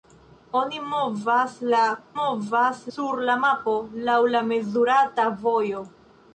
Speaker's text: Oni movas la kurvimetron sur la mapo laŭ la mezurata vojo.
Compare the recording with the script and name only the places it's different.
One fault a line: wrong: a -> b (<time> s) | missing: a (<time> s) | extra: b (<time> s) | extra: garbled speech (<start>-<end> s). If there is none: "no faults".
wrong: kurvimetron -> movas (2.2 s)